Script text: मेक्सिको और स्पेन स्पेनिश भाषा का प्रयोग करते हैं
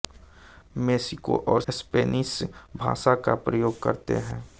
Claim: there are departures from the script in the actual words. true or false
true